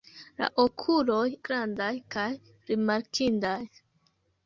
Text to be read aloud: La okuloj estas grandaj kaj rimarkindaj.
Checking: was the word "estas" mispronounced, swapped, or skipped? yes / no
yes